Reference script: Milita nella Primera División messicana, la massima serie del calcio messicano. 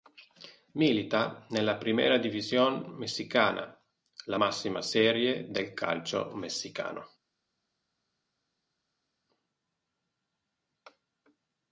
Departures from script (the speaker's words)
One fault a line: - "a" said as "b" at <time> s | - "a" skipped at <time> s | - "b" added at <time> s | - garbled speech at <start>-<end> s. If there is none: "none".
none